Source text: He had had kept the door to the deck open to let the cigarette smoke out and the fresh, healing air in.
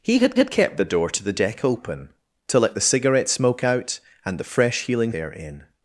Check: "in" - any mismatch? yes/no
no